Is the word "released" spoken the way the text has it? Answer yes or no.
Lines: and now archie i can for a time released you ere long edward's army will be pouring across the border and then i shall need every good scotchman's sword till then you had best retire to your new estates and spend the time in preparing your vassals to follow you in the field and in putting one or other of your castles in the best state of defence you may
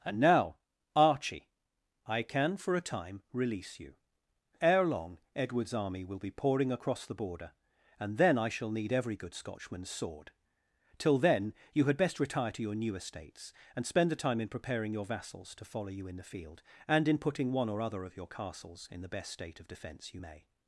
no